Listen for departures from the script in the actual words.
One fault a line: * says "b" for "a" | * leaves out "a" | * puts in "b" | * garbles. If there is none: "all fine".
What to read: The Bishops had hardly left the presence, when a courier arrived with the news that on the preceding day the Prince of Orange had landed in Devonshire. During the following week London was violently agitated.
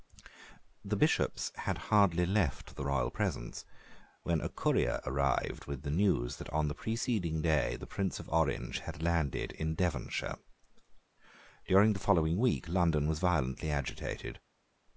* puts in "royal"